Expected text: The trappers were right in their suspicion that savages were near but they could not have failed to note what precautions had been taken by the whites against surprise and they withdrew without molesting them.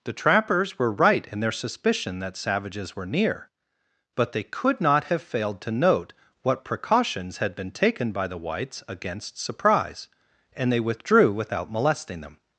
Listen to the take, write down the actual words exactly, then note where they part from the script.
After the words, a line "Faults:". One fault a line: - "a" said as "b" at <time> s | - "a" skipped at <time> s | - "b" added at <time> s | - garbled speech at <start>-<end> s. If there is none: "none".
The trappers were right in their suspicion that savages were near but they could not have failed to note what precautions had been taken by the whites against surprise and they withdrew without molesting them.
Faults:
none